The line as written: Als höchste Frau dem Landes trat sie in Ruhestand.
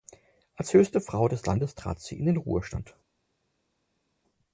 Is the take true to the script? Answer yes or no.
no